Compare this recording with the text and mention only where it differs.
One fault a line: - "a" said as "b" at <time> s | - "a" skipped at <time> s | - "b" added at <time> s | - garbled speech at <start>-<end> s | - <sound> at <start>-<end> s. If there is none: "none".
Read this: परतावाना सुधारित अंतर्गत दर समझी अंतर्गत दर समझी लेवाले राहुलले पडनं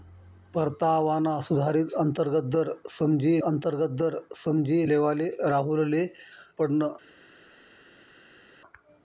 none